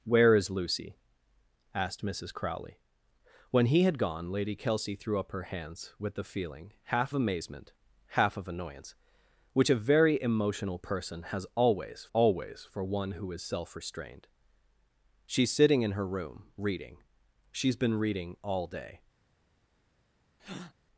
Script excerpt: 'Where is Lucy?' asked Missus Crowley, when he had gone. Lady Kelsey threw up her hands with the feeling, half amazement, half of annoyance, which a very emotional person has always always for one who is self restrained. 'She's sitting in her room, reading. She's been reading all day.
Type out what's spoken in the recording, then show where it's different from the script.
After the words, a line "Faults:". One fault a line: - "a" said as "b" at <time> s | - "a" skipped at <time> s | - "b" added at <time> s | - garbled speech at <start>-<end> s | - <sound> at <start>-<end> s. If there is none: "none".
'Where is Lucy?' asked Missus Crowley, when he had gone. Lady Kelsey threw up her hands with the feeling, half amazement, half of annoyance, which a very emotional person has always always for one who is self restrained. 'She's sitting in her room, reading. She's been reading all day.
Faults:
- breath at 20.4-20.7 s